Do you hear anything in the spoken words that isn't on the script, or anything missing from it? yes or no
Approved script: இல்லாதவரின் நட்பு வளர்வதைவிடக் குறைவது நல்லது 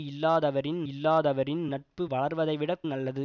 yes